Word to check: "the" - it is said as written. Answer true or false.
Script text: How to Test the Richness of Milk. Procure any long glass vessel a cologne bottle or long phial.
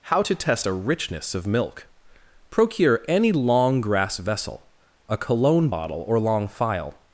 false